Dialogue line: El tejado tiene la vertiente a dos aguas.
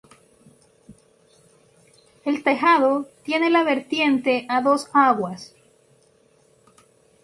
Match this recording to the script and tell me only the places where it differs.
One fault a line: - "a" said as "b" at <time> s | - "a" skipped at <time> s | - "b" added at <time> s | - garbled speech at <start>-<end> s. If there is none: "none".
none